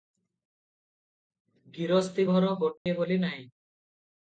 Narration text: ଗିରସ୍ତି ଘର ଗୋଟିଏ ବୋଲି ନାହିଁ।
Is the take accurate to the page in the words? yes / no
yes